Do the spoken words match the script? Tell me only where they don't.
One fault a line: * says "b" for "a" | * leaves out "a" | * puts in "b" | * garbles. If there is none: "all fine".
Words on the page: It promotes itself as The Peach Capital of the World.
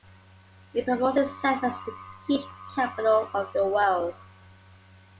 all fine